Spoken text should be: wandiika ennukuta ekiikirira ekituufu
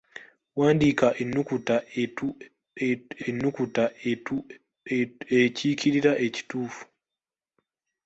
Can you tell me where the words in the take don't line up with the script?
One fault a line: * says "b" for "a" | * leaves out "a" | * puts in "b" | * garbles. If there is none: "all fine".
* puts in "ennukuta"